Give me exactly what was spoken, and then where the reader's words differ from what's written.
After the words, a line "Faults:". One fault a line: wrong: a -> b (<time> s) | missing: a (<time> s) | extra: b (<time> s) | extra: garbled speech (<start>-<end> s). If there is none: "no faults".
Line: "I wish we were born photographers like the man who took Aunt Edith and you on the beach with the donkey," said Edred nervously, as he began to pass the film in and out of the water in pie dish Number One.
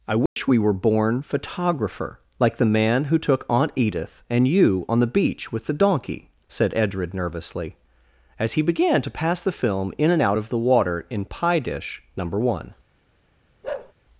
"I wish we were born photographer like the man who took Aunt Edith and you on the beach with the donkey," said Edred nervously, as he began to pass the film in and out of the water in pie dish Number One.
Faults:
wrong: photographers -> photographer (1.2 s)